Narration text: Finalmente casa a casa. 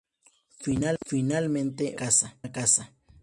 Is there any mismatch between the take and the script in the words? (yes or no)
no